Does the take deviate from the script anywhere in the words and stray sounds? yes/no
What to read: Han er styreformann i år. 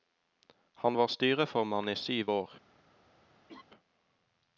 yes